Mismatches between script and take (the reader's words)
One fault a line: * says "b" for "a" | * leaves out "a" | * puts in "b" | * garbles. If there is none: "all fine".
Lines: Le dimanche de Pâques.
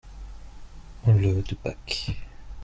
* leaves out "dimanche"